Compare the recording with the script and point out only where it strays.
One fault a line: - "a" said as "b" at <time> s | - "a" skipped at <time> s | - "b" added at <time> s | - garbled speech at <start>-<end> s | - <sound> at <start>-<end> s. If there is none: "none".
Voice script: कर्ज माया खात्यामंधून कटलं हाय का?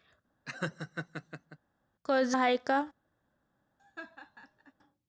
- laugh at 0.4-1.6 s
- "माया खात्यामंधून कटलं" skipped at 2.4 s
- laugh at 3.8-4.7 s